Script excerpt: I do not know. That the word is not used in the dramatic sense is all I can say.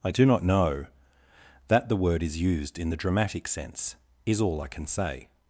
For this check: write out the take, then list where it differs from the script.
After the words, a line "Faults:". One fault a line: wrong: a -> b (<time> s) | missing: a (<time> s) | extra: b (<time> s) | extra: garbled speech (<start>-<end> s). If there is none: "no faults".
I do not know. That the word is used in the dramatic sense is all I can say.
Faults:
missing: not (2.4 s)